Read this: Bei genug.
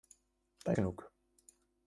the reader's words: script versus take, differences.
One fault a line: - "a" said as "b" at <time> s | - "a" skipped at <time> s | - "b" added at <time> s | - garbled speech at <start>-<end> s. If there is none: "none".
none